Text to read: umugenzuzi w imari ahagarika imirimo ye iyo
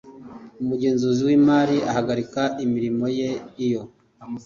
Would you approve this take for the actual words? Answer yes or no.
yes